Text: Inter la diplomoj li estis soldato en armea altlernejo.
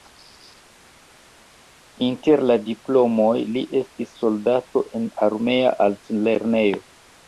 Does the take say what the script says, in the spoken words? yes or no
yes